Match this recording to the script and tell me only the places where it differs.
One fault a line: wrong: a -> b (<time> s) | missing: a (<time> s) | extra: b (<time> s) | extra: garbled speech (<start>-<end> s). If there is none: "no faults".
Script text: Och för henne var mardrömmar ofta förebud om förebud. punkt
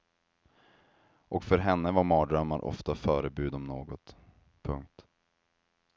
wrong: förebud -> något (3.6 s)